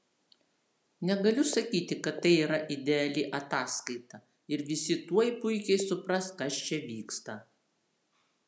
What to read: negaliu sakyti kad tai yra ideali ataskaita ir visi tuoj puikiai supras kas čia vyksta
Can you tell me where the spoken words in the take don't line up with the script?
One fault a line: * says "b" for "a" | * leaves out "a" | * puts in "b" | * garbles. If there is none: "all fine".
all fine